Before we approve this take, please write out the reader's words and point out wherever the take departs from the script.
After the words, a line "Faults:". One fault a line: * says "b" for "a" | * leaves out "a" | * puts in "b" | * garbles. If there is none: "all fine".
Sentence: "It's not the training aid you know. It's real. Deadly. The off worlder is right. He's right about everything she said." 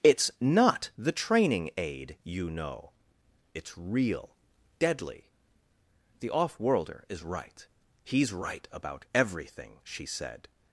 "It's not the training aid you know. It's real. Deadly. The off worlder is right. He's right about everything she said."
Faults:
all fine